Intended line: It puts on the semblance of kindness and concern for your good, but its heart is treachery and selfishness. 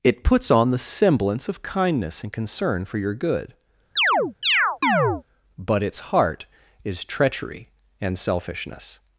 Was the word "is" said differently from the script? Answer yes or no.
no